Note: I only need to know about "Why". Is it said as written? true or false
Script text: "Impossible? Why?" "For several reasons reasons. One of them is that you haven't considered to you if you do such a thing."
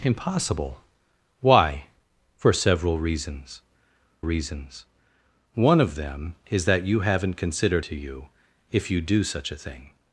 true